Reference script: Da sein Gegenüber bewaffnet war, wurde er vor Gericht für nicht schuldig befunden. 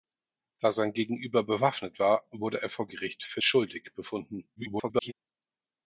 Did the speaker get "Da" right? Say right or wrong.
right